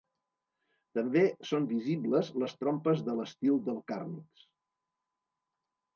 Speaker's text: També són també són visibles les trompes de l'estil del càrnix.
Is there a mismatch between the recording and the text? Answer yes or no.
yes